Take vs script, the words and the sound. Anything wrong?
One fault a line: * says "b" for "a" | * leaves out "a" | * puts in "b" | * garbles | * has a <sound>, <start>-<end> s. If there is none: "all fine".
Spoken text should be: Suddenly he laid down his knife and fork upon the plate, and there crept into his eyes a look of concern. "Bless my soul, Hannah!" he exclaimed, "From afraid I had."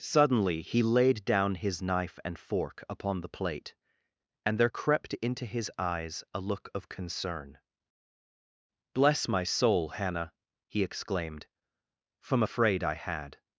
all fine